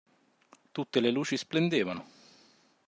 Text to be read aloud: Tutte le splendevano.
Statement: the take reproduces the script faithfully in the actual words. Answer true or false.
false